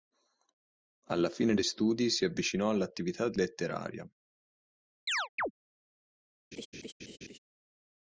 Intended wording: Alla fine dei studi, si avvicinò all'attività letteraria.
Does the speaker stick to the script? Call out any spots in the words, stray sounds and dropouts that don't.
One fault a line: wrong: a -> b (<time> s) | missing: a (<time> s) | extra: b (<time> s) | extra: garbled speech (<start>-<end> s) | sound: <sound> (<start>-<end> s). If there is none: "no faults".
sound: chirp (5.1-5.5 s)
sound: laugh (6.5-7.4 s)